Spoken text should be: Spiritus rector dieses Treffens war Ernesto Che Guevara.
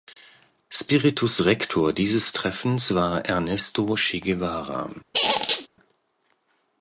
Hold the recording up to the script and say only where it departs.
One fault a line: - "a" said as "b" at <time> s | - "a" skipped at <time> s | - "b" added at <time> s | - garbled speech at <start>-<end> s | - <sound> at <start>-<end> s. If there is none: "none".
- squeak at 5.1-5.7 s